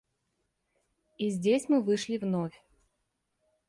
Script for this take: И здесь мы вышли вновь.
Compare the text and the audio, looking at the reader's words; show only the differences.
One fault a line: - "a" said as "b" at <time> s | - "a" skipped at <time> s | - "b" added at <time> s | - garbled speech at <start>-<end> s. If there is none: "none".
none